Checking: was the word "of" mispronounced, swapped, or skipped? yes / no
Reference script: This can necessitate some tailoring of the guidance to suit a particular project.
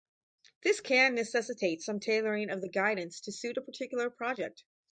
no